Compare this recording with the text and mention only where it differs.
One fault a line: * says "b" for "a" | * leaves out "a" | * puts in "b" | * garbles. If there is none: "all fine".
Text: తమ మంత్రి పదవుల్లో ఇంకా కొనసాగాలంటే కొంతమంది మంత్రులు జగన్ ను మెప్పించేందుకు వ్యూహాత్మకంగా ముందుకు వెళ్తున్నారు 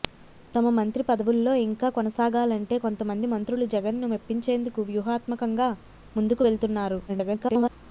* garbles